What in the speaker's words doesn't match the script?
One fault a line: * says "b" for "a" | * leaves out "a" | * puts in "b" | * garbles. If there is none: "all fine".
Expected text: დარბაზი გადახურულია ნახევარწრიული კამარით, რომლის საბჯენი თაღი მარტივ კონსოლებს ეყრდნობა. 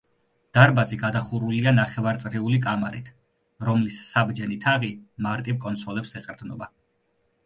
all fine